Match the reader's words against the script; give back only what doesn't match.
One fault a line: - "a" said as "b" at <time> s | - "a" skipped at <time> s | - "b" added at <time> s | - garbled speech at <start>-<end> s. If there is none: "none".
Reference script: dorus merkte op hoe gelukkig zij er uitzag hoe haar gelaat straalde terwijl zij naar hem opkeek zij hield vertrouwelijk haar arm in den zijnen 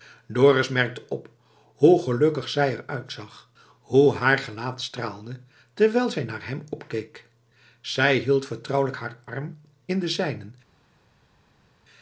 none